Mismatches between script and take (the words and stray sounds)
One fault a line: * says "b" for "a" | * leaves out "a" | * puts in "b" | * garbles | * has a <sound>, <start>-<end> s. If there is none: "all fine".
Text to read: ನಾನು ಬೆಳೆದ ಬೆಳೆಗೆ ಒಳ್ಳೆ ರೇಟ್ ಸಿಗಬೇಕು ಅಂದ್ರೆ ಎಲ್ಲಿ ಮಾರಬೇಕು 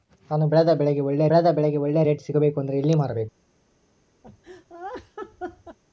* puts in "ಬೆಳೆದ ಬೆಳೆಗೆ ಒಳ್ಳೆ"
* has a laugh, 4.2-5.8 s